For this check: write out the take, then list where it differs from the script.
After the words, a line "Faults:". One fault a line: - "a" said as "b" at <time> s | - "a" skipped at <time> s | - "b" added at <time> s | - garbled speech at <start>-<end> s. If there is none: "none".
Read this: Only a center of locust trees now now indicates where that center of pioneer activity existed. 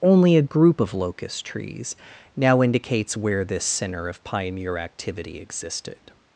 Only a group of locust trees now indicates where this center of pioneer activity existed.
Faults:
- "center" said as "group" at 0.4 s
- "now" skipped at 2.6 s
- "that" said as "this" at 3.4 s